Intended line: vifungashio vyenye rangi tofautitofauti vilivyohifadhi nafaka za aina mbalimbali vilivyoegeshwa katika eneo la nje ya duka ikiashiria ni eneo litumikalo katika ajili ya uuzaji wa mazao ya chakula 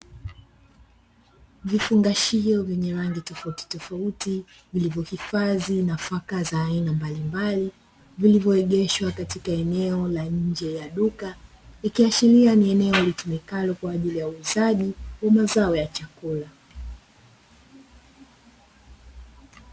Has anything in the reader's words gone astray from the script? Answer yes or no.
yes